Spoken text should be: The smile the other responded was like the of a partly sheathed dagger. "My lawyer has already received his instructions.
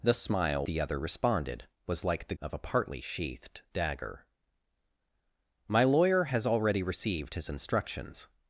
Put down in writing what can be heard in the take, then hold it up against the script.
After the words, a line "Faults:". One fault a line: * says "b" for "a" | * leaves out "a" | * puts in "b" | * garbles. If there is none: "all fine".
The smile the other responded was like the of a partly sheathed dagger. "My lawyer has already received his instructions.
Faults:
all fine